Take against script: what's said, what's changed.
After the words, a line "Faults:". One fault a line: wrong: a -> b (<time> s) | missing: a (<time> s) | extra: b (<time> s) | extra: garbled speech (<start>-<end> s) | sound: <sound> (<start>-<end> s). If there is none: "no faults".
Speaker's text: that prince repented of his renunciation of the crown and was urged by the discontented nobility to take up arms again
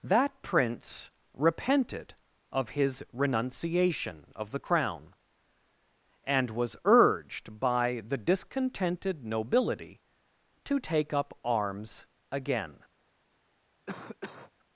that prince repented of his renunciation of the crown and was urged by the discontented nobility to take up arms again
Faults:
sound: cough (13.9-14.5 s)